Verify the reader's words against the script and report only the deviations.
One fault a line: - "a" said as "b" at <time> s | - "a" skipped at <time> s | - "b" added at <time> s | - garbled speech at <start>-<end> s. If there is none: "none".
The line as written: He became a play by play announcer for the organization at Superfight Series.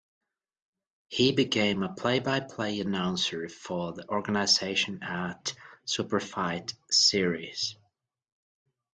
none